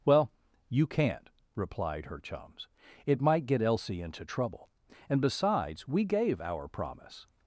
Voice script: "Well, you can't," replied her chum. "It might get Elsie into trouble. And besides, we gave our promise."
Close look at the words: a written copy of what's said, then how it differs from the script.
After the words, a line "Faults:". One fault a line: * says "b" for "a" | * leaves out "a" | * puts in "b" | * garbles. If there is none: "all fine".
"Well, you can't," replied her chums. "It might get Elsie into trouble. And besides, we gave our promise."
Faults:
* says "chums" for "chum"